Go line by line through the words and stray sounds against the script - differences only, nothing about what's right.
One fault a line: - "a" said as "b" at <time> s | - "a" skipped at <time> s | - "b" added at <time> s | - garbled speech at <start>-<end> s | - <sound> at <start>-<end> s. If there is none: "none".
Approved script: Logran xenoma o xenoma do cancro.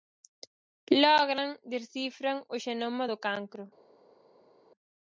- "xenoma" said as "descifran" at 1.7 s